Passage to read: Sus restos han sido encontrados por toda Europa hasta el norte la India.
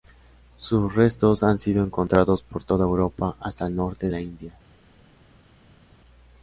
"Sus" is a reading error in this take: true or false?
false